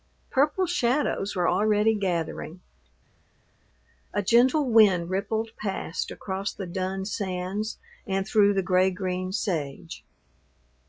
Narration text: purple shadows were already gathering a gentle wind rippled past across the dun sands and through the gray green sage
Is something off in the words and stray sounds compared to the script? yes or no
no